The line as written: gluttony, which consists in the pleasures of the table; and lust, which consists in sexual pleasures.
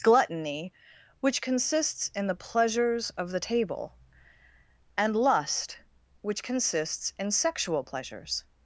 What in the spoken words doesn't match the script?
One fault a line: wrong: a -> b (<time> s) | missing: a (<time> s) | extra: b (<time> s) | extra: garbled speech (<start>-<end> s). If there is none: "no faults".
no faults